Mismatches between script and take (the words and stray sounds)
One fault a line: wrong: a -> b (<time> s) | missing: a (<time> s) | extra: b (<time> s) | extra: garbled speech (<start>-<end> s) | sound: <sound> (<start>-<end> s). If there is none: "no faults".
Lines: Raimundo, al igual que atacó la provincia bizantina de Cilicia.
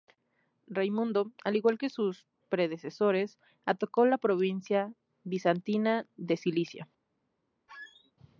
extra: sus predecesores (1.9 s)
sound: squeak (7.7-8.1 s)